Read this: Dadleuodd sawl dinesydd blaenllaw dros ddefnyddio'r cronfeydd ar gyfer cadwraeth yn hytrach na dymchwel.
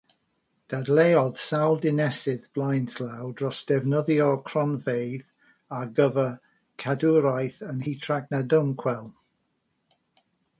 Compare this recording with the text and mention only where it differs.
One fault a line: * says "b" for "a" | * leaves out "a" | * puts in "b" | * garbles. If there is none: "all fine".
all fine